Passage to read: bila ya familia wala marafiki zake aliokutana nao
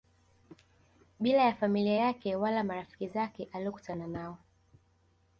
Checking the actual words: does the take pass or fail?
fail